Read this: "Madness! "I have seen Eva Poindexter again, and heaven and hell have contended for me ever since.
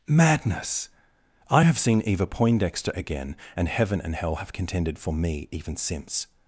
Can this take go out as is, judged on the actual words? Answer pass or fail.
fail